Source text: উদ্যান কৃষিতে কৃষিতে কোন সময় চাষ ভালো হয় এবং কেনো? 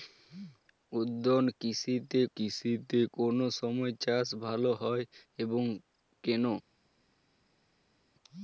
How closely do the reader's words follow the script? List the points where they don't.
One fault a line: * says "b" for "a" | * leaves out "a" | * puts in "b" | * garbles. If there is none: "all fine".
all fine